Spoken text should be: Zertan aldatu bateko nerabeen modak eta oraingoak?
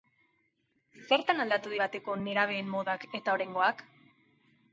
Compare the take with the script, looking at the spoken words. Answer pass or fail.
pass